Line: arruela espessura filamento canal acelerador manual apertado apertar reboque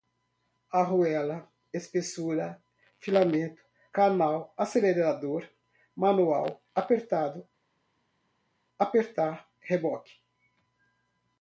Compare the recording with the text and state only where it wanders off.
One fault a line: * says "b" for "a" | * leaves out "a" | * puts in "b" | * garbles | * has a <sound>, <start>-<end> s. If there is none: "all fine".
all fine